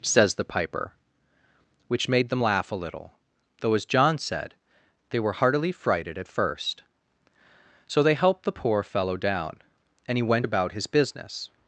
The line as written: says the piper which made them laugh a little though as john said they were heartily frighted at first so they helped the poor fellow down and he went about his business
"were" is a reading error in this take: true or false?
false